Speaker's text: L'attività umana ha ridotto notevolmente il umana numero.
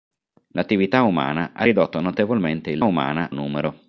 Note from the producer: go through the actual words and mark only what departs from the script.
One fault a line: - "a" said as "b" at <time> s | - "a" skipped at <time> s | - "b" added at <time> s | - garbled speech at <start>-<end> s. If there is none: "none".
none